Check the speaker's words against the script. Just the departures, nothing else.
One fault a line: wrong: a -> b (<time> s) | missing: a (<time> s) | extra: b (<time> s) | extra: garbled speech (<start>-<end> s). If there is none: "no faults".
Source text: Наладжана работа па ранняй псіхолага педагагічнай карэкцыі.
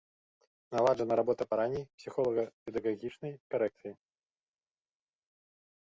no faults